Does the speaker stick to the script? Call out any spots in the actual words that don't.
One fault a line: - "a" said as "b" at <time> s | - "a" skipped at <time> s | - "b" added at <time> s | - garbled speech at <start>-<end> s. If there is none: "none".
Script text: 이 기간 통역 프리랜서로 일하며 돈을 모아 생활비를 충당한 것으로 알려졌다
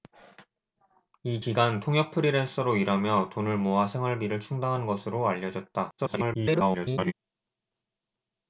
- garbled speech at 6.0-7.1 s